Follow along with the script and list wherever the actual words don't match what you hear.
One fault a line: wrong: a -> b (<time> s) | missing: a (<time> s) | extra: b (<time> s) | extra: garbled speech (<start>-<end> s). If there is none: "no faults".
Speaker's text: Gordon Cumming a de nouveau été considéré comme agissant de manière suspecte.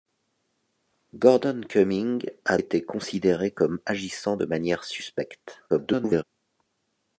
missing: de nouveau (2.6 s)
extra: garbled speech (5.7-6.2 s)